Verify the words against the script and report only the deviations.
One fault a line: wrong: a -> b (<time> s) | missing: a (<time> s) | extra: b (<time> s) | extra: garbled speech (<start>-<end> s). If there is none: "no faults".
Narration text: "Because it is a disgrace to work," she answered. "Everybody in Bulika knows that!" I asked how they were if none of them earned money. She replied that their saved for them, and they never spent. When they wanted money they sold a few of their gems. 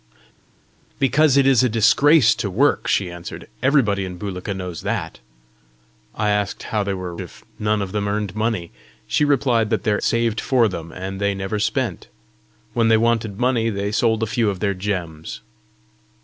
no faults